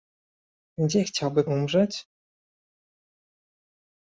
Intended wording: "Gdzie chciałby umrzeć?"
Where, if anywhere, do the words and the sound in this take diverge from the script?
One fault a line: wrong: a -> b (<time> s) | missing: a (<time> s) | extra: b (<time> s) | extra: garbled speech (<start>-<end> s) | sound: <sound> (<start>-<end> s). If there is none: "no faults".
no faults